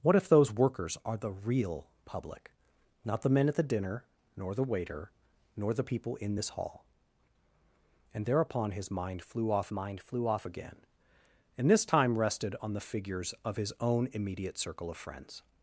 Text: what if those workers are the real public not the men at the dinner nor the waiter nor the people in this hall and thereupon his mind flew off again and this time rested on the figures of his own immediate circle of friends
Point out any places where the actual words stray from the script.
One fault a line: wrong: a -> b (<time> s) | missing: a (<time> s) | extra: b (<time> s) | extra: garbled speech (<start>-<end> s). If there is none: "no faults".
extra: mind flew off (9.7 s)